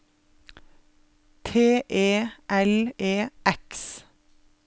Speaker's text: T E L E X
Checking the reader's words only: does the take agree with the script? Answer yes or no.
yes